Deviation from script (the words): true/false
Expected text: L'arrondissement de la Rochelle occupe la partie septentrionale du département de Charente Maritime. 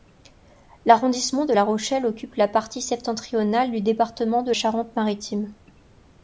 false